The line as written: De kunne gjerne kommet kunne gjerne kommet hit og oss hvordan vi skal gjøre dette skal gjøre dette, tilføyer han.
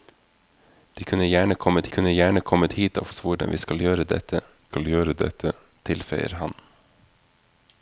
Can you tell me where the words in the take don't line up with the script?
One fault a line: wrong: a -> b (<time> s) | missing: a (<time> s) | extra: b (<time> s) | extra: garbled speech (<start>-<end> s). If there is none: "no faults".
no faults